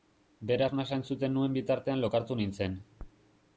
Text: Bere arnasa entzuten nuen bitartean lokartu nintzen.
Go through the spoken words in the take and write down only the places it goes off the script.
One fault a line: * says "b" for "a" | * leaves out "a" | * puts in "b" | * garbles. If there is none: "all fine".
all fine